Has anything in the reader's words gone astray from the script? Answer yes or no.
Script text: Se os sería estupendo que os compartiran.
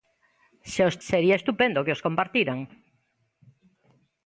no